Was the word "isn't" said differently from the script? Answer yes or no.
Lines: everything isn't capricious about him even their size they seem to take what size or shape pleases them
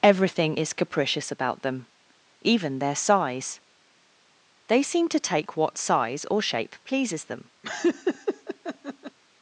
yes